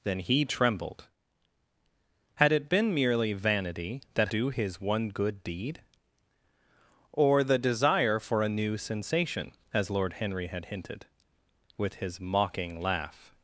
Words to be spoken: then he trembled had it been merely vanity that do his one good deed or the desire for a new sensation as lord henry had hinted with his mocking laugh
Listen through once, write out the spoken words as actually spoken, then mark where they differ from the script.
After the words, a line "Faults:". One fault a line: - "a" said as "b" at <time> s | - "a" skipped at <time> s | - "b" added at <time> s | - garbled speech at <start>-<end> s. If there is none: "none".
then he trembled had it been merely vanity that do his one good deed or the desire for a new sensation as lord henry had hinted with his mocking laugh
Faults:
none